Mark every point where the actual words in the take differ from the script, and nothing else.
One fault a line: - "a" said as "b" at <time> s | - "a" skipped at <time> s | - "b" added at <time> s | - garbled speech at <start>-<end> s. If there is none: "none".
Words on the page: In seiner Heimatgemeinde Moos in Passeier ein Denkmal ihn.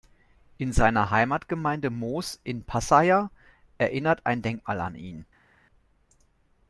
- "erinnert" added at 3.8 s
- "an" added at 4.8 s